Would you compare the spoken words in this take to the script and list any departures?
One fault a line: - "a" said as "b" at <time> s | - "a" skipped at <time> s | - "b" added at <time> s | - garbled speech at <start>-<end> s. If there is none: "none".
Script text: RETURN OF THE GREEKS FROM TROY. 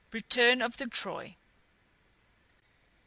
- "GREEKS FROM" skipped at 0.9 s